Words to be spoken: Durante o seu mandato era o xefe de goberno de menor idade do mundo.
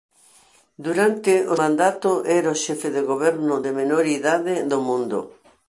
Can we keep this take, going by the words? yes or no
no